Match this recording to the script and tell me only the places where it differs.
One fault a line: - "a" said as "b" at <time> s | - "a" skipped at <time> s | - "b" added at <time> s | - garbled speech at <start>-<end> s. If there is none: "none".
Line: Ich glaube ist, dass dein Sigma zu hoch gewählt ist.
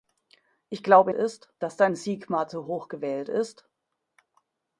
none